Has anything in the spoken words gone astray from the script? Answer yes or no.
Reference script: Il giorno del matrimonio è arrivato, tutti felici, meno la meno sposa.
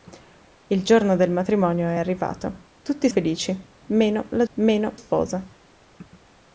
no